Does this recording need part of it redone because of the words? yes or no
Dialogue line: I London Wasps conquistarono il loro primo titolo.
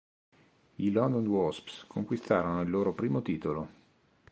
no